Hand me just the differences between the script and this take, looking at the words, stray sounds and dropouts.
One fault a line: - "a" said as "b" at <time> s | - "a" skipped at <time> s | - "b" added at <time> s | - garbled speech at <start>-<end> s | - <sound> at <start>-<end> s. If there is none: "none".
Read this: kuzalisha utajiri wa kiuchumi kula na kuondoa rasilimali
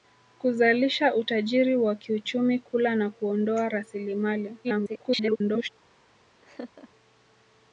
- garbled speech at 4.6-5.7 s
- laugh at 6.4-6.9 s